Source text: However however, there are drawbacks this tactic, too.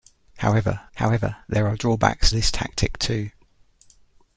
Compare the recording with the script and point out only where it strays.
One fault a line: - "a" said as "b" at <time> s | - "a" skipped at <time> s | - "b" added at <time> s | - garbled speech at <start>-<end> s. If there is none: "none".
none